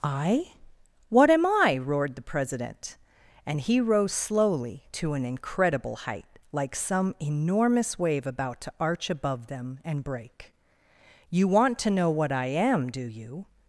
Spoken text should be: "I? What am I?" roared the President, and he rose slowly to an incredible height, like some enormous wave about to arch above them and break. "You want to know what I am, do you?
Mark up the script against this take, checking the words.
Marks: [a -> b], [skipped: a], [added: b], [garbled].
"I? What am I?" roared the President, and he rose slowly to an incredible height, like some enormous wave about to arch above them and break. "You want to know what I am, do you?